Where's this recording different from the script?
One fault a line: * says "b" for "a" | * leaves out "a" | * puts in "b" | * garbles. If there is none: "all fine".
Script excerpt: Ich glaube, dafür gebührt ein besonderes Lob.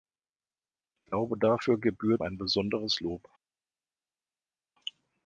all fine